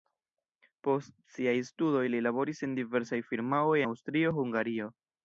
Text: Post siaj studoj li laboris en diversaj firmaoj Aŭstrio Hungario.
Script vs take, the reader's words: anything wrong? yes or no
no